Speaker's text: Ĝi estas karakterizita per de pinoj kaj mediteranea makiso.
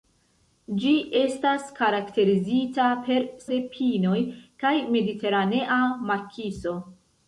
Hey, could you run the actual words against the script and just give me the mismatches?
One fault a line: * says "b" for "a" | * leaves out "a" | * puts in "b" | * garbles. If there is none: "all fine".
all fine